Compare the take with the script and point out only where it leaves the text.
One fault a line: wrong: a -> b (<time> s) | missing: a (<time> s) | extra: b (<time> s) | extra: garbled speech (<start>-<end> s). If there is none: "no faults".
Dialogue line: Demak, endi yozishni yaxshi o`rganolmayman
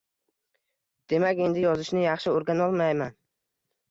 no faults